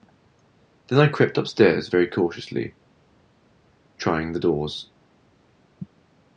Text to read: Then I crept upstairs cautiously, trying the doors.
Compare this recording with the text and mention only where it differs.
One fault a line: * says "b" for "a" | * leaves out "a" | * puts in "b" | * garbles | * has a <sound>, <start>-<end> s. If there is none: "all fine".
* puts in "very"